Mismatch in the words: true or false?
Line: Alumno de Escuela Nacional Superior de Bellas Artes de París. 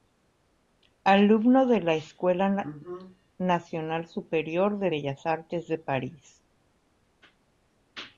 true